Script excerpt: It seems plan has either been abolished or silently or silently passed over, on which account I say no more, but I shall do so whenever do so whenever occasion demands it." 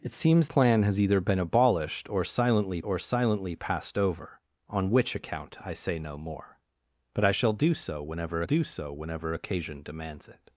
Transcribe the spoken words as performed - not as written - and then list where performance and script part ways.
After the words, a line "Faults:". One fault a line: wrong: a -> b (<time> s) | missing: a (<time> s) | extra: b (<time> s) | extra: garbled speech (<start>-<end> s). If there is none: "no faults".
It seems plan has either been abolished or silently or silently passed over, on which account I say no more, but I shall do so whenever do so whenever occasion demands it."
Faults:
no faults